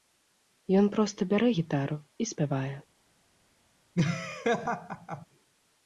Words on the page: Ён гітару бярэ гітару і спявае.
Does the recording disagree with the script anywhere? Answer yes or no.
yes